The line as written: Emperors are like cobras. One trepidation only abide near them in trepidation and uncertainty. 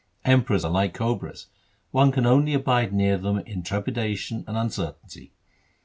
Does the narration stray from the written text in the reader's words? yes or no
yes